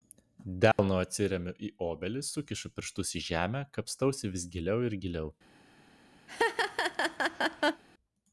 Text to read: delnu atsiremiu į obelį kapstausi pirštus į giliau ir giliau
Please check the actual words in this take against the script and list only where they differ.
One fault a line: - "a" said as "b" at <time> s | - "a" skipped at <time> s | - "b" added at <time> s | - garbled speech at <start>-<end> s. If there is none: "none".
- "kapstausi" said as "sukišu" at 2.3 s
- "žemę kapstausi vis" added at 3.3 s